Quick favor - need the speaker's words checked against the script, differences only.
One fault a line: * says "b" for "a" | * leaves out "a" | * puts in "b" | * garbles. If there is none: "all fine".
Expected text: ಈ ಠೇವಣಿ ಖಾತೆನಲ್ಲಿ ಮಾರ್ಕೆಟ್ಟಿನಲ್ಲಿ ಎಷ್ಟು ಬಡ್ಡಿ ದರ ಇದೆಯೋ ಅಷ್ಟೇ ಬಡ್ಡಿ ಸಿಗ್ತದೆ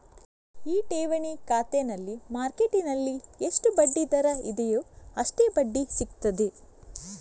all fine